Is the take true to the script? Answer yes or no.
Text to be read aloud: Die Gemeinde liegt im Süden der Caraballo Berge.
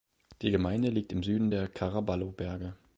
yes